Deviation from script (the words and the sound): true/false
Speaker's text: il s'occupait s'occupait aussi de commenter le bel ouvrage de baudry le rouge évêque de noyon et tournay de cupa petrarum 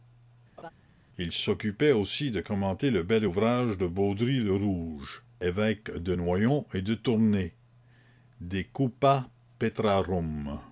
true